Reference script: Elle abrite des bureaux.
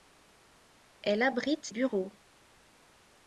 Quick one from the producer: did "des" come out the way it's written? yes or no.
no